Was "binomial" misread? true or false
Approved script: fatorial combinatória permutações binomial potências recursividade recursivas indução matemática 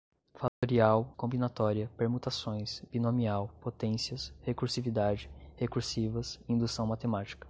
false